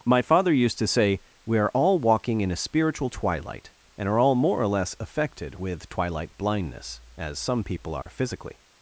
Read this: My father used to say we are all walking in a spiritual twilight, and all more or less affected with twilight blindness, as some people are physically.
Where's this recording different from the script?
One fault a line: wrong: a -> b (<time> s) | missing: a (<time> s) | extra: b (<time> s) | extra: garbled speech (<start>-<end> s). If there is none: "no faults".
extra: are (4.1 s)